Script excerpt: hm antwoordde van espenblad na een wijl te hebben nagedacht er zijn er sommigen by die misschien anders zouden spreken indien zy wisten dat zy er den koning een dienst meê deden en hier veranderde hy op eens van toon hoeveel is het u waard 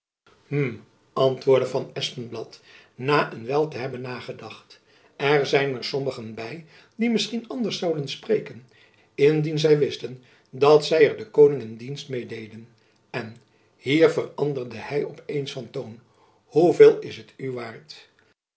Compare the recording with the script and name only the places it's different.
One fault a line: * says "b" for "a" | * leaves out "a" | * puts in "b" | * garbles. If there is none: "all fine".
all fine